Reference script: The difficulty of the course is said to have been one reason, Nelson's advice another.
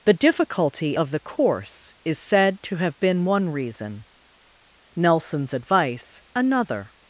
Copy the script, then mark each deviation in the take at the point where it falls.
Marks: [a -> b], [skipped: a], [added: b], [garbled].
The difficulty of the course is said to have been one reason, Nelson's advice another.